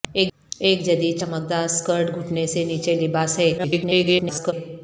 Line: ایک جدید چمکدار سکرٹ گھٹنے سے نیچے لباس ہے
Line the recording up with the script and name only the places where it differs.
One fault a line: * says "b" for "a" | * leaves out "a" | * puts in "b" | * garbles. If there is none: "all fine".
* garbles